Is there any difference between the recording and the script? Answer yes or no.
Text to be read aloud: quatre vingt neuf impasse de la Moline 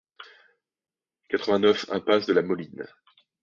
no